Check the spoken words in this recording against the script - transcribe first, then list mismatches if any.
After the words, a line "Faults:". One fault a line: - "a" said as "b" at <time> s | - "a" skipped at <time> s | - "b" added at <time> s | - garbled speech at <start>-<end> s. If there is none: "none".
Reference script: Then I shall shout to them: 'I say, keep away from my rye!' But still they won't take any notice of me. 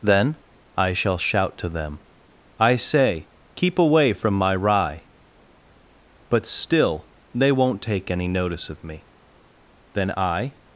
Then I shall shout to them: 'I say, keep away from my rye!' But still they won't take any notice of me. Then I
Faults:
- "Then I" added at 9.9 s